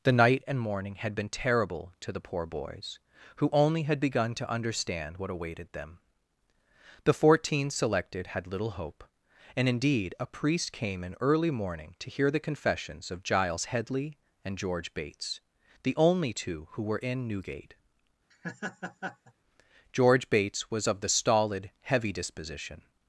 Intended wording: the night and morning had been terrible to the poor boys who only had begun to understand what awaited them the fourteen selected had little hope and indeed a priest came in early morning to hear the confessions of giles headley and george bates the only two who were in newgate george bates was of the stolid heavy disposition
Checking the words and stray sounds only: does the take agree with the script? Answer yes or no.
no